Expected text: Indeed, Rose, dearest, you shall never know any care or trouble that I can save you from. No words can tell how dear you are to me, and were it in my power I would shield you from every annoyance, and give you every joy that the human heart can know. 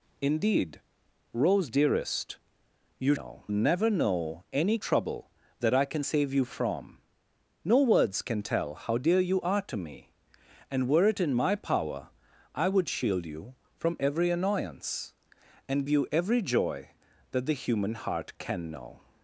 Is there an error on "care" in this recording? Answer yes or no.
yes